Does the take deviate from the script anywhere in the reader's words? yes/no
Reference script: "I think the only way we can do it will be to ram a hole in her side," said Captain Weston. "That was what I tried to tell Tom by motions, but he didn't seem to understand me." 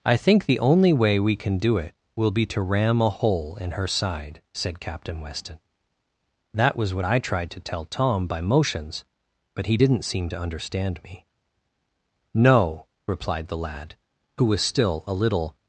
yes